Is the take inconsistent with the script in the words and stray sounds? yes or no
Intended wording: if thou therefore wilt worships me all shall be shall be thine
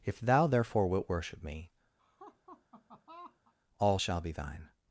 yes